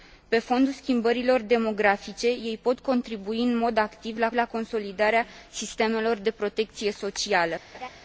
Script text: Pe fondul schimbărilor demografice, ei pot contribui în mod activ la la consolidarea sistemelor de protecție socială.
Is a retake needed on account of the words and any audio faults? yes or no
yes